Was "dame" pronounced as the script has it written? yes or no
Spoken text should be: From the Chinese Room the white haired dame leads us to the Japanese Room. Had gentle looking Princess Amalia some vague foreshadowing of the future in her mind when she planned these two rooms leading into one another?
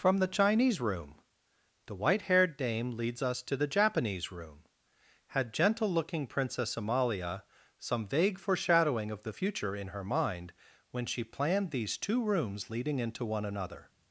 yes